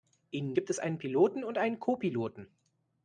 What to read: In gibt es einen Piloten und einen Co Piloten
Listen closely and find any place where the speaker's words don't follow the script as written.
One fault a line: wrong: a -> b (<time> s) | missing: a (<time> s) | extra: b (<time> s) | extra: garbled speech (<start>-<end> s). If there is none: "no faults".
no faults